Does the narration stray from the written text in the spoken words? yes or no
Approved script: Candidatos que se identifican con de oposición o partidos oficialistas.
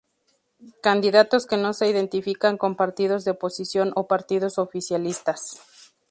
yes